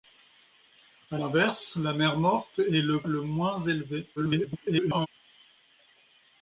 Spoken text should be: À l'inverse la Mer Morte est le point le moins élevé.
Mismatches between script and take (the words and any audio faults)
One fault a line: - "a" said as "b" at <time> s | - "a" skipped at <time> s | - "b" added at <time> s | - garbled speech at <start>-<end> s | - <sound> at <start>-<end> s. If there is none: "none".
- "point" skipped at 3.0 s
- garbled speech at 4.2-5.1 s